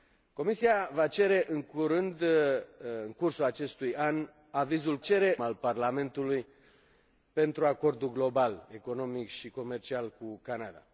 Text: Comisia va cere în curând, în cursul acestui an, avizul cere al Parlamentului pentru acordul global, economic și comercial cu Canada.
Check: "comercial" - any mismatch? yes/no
no